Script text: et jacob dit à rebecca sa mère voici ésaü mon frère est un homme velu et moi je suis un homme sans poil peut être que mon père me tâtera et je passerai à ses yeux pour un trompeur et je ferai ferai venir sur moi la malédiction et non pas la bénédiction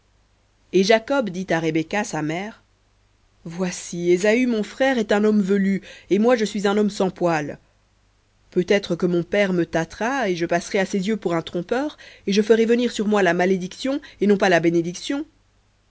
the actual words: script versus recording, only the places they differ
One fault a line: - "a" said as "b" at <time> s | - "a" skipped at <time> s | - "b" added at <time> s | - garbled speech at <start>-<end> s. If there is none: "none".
- "ferai" skipped at 12.7 s